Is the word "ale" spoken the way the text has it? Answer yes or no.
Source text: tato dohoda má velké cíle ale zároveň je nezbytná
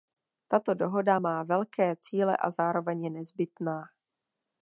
no